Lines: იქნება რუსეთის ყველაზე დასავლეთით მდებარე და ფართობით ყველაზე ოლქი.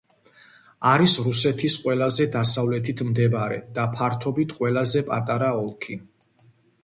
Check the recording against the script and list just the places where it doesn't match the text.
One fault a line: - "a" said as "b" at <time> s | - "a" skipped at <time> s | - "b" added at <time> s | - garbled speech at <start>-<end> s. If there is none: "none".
- "იქნება" said as "არის" at 0.9 s
- "პატარა" added at 5.1 s